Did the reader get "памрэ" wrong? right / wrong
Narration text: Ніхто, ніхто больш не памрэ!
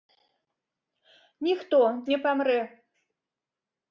right